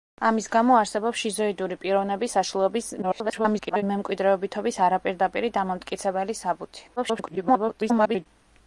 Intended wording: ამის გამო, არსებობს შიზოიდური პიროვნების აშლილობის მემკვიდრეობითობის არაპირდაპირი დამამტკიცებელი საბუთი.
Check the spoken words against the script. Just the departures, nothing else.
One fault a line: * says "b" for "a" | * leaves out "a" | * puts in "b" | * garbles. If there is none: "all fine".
* garbles
* garbles